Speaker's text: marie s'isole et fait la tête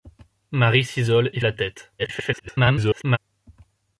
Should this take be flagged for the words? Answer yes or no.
yes